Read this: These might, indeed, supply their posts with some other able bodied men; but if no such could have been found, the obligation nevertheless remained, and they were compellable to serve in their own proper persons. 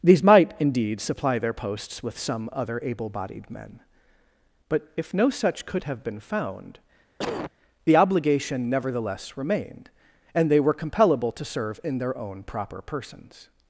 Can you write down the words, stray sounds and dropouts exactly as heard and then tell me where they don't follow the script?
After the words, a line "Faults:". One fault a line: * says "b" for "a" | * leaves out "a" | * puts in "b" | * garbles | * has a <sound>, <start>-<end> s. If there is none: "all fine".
These might, indeed, supply their posts with some other able bodied men; but if no such could have been found, the obligation nevertheless remained, and they were compellable to serve in their own proper persons.
Faults:
* has a cough, 7.2-7.5 s